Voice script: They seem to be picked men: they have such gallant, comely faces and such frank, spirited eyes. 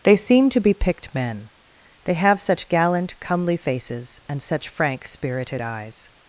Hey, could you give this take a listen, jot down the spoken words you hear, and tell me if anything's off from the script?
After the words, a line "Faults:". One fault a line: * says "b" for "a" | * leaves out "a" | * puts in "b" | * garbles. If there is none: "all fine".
They seem to be picked men: they have such gallant, comely faces and such frank, spirited eyes.
Faults:
all fine